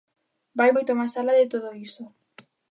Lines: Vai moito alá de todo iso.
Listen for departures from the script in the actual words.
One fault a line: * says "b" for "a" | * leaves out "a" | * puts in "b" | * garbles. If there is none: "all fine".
* puts in "máis"